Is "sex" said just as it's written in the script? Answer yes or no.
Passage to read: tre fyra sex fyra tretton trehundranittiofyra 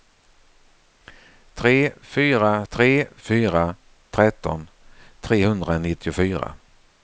no